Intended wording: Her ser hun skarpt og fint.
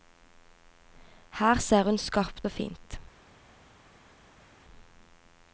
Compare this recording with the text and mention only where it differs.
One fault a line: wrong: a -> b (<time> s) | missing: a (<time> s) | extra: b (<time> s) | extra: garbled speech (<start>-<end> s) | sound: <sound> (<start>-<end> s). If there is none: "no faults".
no faults